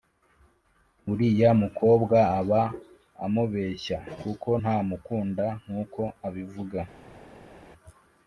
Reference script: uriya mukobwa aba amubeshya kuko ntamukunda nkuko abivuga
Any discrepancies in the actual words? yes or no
no